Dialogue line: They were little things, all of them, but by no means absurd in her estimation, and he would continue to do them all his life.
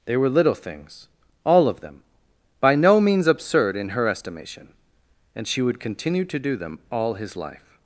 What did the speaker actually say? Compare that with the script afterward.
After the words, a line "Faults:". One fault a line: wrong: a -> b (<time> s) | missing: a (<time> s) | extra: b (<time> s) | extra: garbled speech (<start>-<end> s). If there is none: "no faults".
They were little things, all of them, by no means absurd in her estimation, and she would continue to do them all his life.
Faults:
missing: but (2.0 s)
wrong: he -> she (5.5 s)